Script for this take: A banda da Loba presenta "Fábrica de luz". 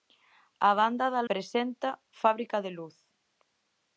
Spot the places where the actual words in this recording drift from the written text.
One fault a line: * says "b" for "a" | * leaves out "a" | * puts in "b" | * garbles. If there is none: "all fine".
* leaves out "Loba"